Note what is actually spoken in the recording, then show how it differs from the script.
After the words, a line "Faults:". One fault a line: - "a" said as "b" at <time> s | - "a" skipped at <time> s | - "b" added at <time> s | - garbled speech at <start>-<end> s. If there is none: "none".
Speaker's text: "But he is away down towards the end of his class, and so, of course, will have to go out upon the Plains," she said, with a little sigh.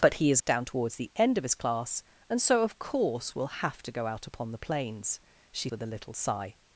"But he is down towards the end of his class, and so, of course, will have to go out upon the Plains," she with a little sigh.
Faults:
- "away" skipped at 0.4 s
- "said" skipped at 5.7 s